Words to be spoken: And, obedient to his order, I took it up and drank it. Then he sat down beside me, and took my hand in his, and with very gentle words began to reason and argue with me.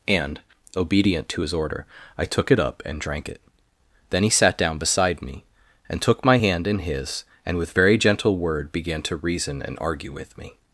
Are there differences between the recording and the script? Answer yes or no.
yes